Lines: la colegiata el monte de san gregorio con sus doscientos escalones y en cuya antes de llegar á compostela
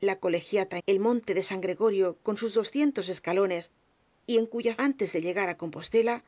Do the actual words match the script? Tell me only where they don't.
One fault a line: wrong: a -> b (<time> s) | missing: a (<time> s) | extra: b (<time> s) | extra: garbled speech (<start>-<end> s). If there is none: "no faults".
no faults